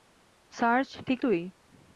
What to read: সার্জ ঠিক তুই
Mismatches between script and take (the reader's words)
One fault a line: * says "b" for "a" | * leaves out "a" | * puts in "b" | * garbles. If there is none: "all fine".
all fine